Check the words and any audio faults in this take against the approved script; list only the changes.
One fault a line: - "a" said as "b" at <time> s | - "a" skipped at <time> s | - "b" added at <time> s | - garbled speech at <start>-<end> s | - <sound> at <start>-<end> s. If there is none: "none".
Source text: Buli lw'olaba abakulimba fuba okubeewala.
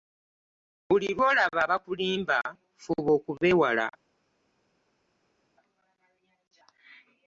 none